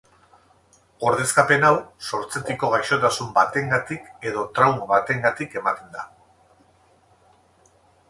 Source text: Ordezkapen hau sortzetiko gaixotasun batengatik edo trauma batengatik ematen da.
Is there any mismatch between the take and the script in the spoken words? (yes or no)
no